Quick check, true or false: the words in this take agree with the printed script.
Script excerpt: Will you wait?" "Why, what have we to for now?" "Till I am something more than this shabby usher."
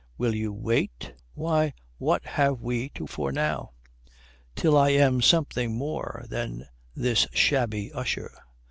true